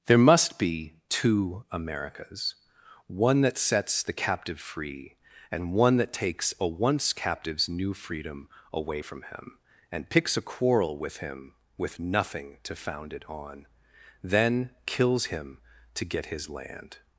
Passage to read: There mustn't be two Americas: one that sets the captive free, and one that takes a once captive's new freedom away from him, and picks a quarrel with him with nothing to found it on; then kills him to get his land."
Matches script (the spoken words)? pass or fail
fail